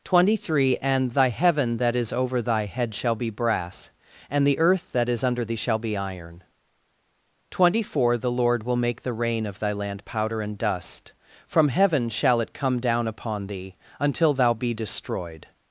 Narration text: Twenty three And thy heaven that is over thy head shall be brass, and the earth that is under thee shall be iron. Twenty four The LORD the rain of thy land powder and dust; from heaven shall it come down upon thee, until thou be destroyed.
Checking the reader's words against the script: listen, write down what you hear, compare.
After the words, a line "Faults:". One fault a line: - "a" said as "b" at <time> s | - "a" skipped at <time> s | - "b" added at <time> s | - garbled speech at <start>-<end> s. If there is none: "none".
Twenty three And thy heaven that is over thy head shall be brass, and the earth that is under thee shall be iron. Twenty four The LORD will make the rain of thy land powder and dust; from heaven shall it come down upon thee, until thou be destroyed.
Faults:
- "will make" added at 8.6 s